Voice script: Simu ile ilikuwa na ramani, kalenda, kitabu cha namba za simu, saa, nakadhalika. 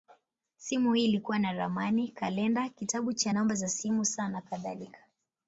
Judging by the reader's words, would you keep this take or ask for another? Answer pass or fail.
fail